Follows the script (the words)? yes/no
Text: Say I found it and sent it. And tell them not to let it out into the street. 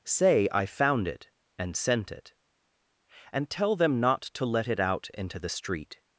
yes